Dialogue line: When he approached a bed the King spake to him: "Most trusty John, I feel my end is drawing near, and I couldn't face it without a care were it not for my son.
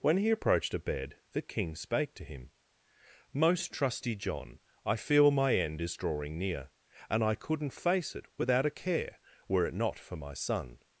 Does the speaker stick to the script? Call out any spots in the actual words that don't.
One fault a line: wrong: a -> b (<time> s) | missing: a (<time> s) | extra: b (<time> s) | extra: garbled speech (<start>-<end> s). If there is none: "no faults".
no faults